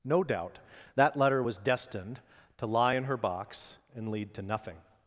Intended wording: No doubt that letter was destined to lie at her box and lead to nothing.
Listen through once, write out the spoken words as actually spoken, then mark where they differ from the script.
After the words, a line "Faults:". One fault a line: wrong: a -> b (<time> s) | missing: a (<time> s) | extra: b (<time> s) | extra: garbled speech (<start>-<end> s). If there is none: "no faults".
No doubt that letter was destined to lie in her box and lead to nothing.
Faults:
wrong: at -> in (2.9 s)